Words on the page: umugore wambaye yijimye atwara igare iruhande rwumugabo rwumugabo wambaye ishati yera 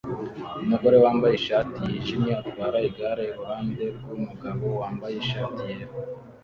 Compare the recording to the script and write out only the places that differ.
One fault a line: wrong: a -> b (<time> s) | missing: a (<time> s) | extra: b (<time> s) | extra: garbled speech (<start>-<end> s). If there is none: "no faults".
extra: ishati (1.4 s)
missing: rwumugabo (4.7 s)